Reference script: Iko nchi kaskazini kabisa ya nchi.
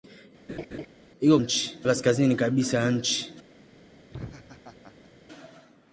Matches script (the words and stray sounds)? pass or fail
fail